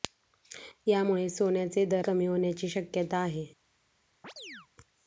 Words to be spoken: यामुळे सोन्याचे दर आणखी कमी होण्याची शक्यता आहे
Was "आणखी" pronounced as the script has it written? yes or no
no